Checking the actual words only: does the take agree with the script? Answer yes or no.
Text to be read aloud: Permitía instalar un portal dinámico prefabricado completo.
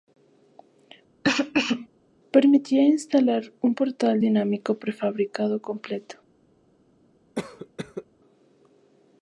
yes